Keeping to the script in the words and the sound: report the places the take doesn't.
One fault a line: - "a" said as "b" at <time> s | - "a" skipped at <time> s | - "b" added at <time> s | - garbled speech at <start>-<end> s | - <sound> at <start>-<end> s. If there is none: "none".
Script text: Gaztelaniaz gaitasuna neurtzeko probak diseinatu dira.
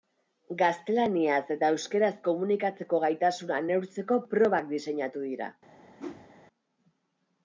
- "eta euskaraz komunikatzeko" added at 1.6 s
- whoosh at 6.0-6.3 s